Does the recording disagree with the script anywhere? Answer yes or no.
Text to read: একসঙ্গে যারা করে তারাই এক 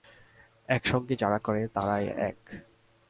no